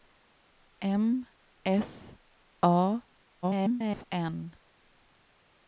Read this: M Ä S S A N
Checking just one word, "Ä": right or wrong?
wrong